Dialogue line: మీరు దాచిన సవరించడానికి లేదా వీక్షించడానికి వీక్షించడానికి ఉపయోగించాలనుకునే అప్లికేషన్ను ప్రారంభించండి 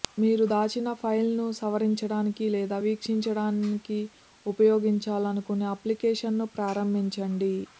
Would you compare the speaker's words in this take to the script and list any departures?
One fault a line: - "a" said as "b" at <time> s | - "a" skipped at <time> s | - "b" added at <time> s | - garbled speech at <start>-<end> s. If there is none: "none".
- "ఫైల్ను" added at 1.0 s
- "వీక్షించడానికి" skipped at 4.0 s